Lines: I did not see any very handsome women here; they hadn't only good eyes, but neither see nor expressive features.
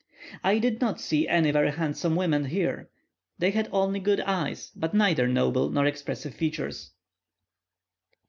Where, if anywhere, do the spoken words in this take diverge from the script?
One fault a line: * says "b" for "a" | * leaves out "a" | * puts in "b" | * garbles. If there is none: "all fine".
* says "had" for "hadn't"
* says "noble" for "see"